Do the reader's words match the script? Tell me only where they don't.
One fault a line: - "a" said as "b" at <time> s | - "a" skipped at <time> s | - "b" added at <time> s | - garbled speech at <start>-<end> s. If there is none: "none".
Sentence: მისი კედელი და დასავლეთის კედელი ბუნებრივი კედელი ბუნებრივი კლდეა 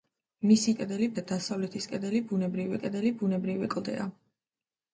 none